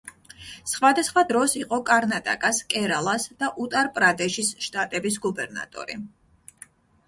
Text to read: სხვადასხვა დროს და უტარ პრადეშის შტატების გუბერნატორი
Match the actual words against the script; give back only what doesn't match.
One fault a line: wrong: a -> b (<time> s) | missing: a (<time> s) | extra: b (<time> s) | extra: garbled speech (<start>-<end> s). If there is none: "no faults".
extra: იყო კარნატაკას კერალას (1.6 s)